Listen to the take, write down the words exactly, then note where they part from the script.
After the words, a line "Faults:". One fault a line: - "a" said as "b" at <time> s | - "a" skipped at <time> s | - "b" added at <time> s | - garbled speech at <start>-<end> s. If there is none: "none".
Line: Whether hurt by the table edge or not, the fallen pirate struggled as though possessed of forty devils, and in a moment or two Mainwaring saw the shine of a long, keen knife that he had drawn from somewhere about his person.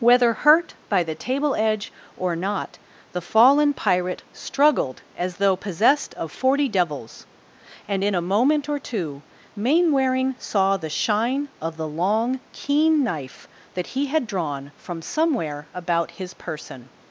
Whether hurt by the table edge or not, the fallen pirate struggled as though possessed of forty devils, and in a moment or two Mainwaring saw the shine of the long, keen knife that he had drawn from somewhere about his person.
Faults:
- "a" said as "the" at 11.8 s